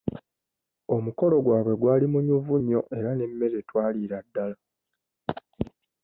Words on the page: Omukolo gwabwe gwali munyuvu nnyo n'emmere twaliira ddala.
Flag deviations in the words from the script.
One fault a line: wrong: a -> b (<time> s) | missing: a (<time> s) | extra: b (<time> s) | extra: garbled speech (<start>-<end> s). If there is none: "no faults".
extra: era (3.0 s)